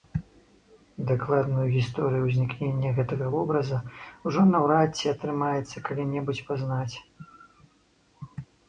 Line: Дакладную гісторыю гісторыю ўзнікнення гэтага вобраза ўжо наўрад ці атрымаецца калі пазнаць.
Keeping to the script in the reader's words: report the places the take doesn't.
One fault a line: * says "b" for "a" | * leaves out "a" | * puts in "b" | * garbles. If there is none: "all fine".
* leaves out "гісторыю"
* puts in "небудзь"